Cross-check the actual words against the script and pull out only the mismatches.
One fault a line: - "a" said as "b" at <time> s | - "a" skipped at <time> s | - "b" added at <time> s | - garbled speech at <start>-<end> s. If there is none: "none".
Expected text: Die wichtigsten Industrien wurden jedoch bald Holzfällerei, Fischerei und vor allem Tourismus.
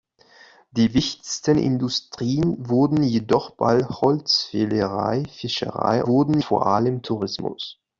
- "und" said as "wurden" at 6.1 s